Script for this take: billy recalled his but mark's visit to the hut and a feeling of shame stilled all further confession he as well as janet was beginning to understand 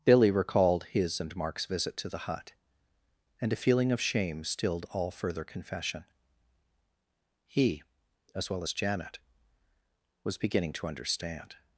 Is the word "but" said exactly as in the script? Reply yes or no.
no